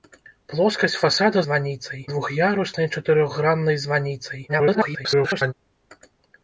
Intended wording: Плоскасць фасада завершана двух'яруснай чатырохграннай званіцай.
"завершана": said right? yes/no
no